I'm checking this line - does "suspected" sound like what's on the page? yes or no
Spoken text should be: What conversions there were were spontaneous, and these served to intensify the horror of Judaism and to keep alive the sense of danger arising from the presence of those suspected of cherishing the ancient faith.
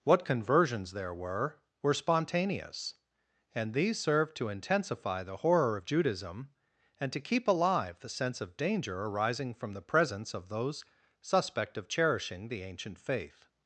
no